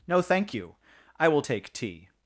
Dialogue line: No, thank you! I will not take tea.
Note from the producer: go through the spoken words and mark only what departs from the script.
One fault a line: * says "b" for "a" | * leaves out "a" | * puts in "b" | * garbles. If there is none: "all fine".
* leaves out "not"